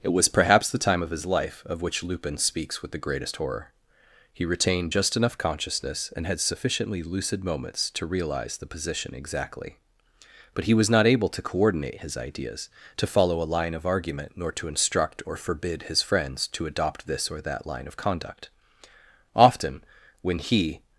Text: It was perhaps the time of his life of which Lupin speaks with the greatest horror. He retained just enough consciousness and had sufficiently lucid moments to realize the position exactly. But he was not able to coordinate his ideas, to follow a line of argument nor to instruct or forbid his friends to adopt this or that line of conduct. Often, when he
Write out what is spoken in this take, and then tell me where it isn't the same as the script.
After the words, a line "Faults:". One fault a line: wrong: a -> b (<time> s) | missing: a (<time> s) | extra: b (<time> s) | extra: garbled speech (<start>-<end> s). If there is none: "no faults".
It was perhaps the time of his life of which Lupin speaks with the greatest horror. He retained just enough consciousness and had sufficiently lucid moments to realize the position exactly. But he was not able to coordinate his ideas, to follow a line of argument nor to instruct or forbid his friends to adopt this or that line of conduct. Often, when he
Faults:
no faults